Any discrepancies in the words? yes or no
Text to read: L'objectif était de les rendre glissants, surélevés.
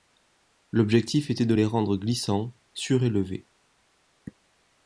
no